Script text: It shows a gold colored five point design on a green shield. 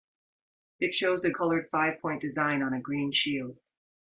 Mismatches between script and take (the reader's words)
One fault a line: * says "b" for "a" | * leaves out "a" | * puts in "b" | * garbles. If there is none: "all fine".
* leaves out "gold"